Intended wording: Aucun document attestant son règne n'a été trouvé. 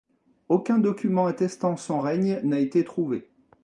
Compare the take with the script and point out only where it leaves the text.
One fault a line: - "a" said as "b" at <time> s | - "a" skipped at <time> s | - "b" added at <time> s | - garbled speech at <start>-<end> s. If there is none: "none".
none